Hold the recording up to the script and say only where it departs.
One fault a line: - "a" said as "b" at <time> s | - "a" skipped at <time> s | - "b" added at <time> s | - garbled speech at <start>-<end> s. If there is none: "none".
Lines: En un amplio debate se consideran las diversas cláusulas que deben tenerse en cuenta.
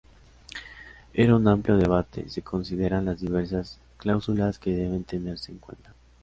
none